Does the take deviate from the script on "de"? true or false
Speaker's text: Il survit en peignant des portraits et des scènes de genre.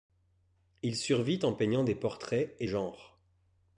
true